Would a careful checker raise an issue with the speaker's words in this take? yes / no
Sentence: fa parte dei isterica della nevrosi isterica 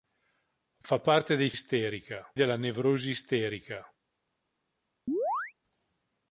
no